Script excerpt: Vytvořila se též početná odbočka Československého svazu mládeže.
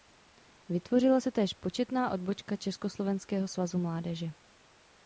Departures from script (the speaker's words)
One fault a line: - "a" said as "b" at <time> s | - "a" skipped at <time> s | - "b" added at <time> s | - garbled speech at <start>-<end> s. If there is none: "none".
none